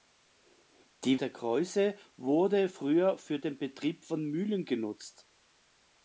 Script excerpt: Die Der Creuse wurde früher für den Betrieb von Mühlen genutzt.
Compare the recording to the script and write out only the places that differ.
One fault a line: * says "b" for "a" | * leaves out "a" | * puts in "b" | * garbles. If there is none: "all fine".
all fine